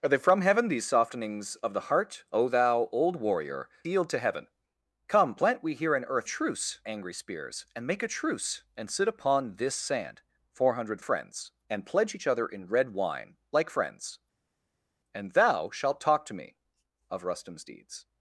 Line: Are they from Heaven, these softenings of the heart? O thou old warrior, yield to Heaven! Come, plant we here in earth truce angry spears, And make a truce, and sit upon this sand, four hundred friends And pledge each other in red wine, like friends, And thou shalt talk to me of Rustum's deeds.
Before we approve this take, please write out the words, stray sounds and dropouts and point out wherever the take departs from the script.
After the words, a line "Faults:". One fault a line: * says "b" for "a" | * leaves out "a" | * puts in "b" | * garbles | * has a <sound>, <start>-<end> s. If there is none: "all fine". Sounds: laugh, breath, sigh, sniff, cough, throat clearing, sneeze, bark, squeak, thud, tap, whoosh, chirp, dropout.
Are they from Heaven, these softenings of the heart? O thou old warrior, yield to Heaven! Come, plant we here in earth truce angry spears, And make a truce, and sit upon this sand, four hundred friends And pledge each other in red wine, like friends, And thou shalt talk to me of Rustum's deeds.
Faults:
all fine